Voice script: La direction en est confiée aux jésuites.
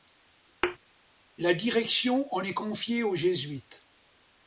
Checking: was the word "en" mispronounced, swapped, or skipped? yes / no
no